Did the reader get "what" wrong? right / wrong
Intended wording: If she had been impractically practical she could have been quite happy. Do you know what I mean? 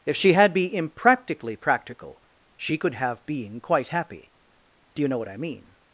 right